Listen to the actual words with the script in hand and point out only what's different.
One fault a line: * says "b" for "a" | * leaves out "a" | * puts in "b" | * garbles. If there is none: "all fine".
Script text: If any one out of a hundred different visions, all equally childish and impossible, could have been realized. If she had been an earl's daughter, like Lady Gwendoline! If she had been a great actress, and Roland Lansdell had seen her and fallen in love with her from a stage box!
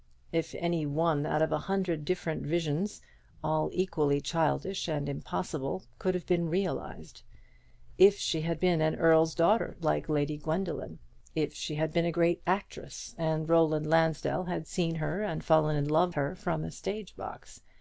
* leaves out "with"